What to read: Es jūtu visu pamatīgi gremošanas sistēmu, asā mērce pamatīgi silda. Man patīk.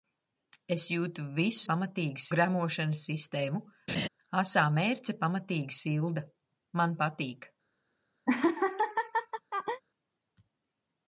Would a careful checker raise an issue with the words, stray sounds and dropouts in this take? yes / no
yes